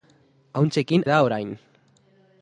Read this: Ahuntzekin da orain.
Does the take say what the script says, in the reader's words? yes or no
yes